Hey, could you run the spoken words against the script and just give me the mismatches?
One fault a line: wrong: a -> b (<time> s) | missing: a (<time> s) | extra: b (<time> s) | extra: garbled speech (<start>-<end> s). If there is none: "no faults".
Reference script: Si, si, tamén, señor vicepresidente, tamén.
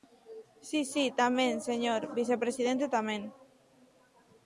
no faults